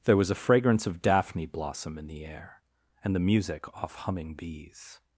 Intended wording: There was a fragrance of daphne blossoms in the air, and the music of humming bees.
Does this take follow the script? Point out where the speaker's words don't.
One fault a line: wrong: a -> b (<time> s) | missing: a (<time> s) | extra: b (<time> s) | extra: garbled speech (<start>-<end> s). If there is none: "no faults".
wrong: blossoms -> blossom (1.4 s)
wrong: of -> off (3.7 s)